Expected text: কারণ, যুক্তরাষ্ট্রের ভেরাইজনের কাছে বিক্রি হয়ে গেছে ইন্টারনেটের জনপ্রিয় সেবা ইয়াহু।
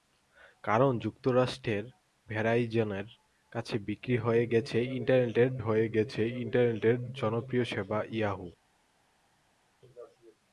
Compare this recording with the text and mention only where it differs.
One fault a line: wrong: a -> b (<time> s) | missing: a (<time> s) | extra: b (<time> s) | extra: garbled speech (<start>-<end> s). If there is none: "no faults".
extra: হয়ে গেছে ইন্টারনেটের (5.6 s)